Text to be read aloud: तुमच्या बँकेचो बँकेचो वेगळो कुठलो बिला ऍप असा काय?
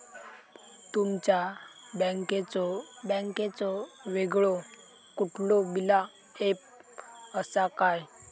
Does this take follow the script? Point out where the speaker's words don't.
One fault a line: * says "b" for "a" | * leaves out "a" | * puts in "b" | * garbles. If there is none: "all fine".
all fine